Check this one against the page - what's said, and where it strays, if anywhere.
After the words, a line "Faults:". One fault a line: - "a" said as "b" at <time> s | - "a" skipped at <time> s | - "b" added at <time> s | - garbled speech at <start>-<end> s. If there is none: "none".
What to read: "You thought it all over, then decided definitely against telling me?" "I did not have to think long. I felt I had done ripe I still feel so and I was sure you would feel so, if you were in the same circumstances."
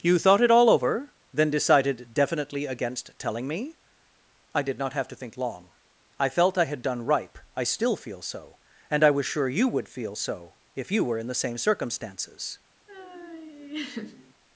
"You thought it all over, then decided definitely against telling me?" "I did not have to think long. I felt I had done ripe I still feel so and I was sure you would feel so, if you were in the same circumstances."
Faults:
none